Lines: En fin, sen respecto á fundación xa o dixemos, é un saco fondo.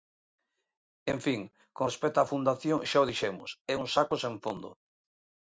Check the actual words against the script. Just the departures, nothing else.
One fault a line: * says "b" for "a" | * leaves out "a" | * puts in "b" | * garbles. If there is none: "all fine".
* says "con" for "sen"
* puts in "sen"